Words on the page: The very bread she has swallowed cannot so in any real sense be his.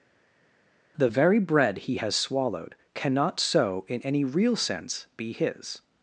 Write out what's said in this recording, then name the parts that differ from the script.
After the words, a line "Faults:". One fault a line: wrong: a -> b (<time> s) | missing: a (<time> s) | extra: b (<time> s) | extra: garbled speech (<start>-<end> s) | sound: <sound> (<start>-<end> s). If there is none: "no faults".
The very bread he has swallowed cannot so in any real sense be his.
Faults:
wrong: she -> he (1.8 s)